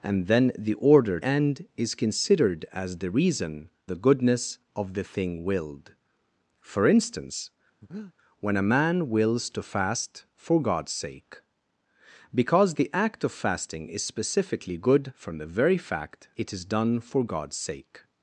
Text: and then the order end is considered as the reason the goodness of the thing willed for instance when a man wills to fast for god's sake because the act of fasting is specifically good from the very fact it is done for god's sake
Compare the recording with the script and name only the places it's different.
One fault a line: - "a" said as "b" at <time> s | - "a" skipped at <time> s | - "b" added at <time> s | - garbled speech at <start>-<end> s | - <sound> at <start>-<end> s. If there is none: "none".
- breath at 7.8-8.1 s